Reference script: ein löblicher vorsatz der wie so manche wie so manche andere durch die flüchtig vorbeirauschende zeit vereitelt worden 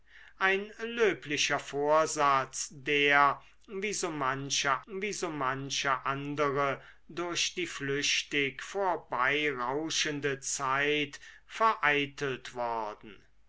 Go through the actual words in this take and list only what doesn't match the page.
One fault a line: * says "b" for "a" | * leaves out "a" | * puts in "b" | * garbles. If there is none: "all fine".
all fine